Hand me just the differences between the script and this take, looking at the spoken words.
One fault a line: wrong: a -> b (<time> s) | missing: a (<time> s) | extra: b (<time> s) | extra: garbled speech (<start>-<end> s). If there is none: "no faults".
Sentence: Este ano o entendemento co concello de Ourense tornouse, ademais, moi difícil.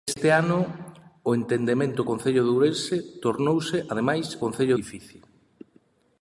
missing: co (2.0 s)
wrong: moi -> concello (4.4 s)